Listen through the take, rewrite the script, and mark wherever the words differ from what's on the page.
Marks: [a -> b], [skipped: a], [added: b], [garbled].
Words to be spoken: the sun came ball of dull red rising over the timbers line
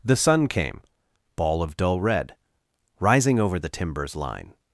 the sun came ball of dull red rising over the timbers line